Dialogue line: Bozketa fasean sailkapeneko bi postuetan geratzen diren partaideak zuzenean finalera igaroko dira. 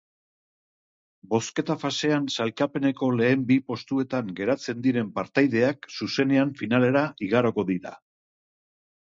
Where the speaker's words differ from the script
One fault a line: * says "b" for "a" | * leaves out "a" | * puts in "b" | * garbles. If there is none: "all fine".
* puts in "lehen"